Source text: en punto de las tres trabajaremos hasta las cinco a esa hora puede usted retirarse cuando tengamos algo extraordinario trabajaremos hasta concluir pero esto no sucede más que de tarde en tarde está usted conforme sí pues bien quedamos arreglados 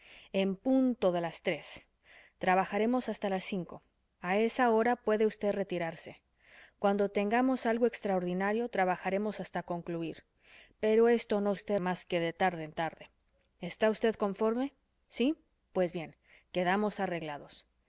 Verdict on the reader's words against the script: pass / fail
fail